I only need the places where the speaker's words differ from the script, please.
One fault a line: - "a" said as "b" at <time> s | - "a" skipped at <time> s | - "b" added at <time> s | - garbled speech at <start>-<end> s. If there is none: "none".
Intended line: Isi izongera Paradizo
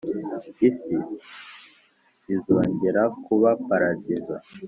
- "kuba" added at 3.2 s